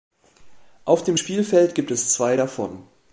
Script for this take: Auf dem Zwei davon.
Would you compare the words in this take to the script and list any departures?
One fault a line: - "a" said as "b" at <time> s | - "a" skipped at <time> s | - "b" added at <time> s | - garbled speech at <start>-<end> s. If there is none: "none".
- "Spielfeld gibt es" added at 1.2 s